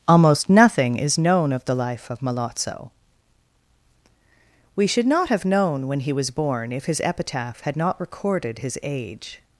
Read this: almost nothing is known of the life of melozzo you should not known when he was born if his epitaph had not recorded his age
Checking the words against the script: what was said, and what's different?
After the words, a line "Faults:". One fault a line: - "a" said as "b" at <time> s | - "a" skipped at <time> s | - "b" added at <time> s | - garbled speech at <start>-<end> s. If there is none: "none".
almost nothing is known of the life of melozzo we should not have known when he was born if his epitaph had not recorded his age
Faults:
- "you" said as "we" at 4.8 s
- "have" added at 5.3 s